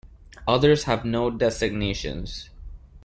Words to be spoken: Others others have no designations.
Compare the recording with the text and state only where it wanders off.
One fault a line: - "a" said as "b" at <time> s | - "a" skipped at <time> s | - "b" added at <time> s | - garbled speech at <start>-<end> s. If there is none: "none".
- "others" skipped at 0.9 s